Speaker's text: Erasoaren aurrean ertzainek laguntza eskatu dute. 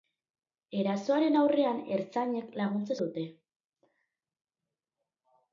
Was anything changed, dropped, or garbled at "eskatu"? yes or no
yes